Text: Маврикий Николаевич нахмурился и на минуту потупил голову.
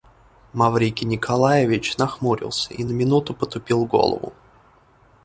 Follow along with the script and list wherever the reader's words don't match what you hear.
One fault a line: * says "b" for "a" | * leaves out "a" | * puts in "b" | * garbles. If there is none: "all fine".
all fine